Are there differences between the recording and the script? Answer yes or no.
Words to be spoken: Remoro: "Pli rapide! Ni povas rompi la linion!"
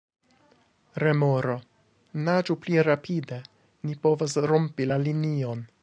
yes